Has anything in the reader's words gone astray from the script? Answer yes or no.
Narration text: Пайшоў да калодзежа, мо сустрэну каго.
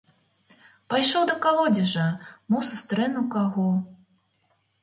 no